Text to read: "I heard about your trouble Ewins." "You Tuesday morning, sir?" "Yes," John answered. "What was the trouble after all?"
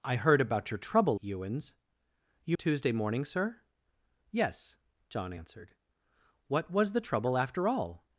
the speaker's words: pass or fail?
pass